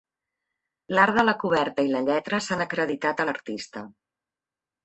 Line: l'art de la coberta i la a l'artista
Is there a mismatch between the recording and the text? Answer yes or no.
yes